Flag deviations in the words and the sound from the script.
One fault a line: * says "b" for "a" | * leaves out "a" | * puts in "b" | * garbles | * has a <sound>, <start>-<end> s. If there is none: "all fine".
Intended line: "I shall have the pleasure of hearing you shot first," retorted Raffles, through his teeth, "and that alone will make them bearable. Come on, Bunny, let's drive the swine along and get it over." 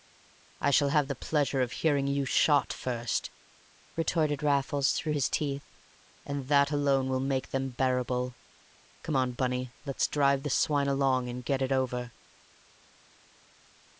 all fine